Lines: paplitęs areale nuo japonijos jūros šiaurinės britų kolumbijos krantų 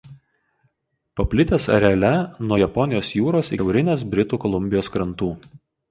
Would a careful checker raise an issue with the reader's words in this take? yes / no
no